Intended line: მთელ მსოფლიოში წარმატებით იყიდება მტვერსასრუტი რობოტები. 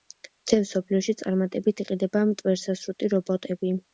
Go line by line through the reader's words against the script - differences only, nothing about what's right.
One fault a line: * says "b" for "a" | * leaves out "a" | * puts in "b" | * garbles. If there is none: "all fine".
all fine